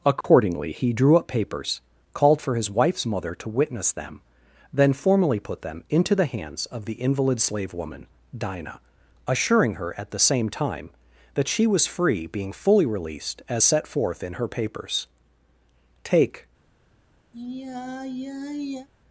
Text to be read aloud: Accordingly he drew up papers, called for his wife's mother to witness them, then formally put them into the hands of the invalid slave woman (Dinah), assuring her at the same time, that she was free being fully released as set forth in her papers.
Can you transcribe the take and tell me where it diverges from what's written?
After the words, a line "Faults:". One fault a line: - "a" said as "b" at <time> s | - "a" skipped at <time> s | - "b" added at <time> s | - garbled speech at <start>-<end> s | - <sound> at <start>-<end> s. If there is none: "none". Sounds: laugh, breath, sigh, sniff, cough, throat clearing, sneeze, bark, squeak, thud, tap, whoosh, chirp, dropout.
Accordingly he drew up papers, called for his wife's mother to witness them, then formally put them into the hands of the invalid slave woman (Dinah), assuring her at the same time, that she was free being fully released as set forth in her papers. "Take
Faults:
- dropout at 0.2-0.2 s
- "Take" added at 16.0 s
- sigh at 17.3-18.9 s